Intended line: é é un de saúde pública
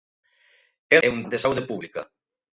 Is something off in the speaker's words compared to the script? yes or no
no